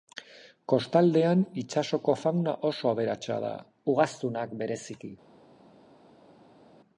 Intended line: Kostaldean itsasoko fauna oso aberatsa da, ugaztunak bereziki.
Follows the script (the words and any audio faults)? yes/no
yes